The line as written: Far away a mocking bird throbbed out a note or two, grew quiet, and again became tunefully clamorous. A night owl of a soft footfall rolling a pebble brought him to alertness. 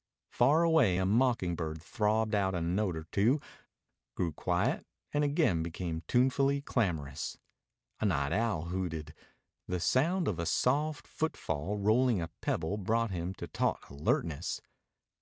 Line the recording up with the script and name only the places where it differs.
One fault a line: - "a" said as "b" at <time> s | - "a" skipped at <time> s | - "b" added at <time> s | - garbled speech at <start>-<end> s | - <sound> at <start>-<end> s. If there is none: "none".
- "hooted The sound" added at 8.6 s
- "taut" added at 13.5 s